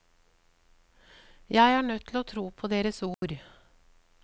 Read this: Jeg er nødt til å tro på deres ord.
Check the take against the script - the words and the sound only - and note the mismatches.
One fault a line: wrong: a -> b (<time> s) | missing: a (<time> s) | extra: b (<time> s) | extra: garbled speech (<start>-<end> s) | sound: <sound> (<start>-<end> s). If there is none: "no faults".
sound: dropout (3.1-3.2 s)